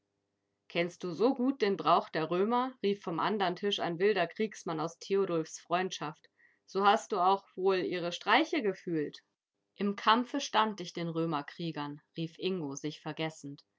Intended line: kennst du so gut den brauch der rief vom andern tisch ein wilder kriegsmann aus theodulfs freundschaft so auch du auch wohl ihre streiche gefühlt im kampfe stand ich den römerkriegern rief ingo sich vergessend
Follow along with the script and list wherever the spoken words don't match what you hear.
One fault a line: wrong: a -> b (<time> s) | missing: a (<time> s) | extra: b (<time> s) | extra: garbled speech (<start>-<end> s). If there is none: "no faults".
extra: römer (2.3 s)
wrong: auch -> hast (6.9 s)